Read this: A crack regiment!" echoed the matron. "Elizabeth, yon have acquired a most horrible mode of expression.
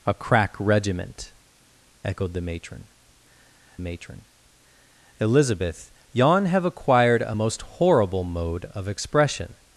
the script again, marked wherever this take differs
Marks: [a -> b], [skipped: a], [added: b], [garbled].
A crack regiment!" echoed the matron. [added: matron] "Elizabeth, yon have acquired a most horrible mode of expression.